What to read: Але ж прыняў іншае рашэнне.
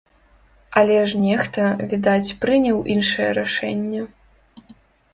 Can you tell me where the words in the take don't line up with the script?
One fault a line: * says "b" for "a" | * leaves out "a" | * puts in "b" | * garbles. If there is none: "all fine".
* puts in "нехта відаць"